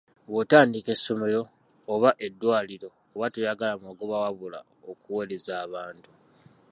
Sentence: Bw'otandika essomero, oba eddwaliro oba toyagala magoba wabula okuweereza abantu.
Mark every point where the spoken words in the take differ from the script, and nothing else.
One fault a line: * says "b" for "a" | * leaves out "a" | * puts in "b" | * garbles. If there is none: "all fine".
all fine